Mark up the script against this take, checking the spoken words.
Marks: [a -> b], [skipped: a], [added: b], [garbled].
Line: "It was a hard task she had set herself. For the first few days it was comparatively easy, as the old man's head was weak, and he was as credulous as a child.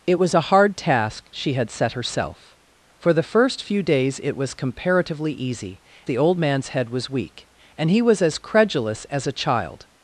"It was a hard task she had set herself. For the first few days it was comparatively easy, [skipped: as] the old man's head was weak, and he was as credulous as a child.